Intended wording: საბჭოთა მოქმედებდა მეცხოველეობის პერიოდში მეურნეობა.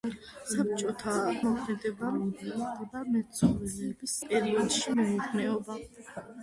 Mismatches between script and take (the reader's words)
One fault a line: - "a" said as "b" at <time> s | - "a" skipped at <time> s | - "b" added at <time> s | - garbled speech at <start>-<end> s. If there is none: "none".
none